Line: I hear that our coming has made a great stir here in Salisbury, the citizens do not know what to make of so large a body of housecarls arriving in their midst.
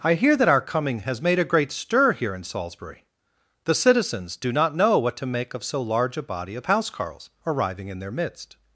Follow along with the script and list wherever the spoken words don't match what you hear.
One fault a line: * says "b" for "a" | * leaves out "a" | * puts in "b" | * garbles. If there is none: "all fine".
all fine